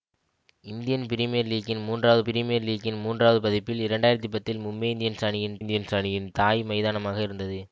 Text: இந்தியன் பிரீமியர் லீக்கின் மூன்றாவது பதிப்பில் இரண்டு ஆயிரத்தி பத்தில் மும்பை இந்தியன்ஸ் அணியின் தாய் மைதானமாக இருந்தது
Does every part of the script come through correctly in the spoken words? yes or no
no